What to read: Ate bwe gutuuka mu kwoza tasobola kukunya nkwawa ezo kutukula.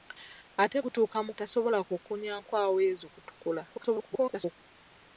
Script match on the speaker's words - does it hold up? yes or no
no